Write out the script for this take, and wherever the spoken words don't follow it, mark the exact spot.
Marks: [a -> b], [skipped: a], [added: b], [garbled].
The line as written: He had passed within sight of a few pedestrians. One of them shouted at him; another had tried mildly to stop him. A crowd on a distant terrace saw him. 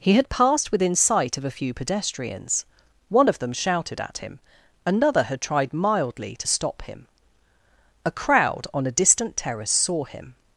He had passed within sight of a few pedestrians. One of them shouted at him; another had tried mildly to stop him. A crowd on a distant terrace saw him.